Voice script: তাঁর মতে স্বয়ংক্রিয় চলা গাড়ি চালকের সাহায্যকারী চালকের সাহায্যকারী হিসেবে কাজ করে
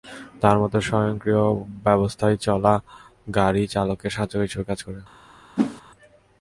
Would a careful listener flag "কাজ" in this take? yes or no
no